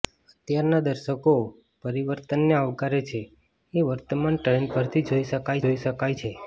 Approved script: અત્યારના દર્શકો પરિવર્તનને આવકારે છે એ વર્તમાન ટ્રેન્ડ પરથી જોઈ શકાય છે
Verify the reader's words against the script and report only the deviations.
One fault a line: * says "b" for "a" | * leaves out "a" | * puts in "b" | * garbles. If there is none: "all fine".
* puts in "જોઈ શકાય"